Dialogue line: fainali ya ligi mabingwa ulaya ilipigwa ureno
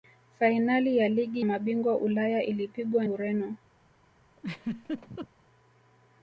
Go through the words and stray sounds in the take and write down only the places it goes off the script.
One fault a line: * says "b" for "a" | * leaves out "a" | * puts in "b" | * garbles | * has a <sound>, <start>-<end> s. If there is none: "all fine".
* has a laugh, 4.4-5.3 s